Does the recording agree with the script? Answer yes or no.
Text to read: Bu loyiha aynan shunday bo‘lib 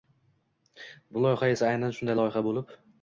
no